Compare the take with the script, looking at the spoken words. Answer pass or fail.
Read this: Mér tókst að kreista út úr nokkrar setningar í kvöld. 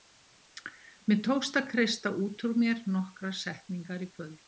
fail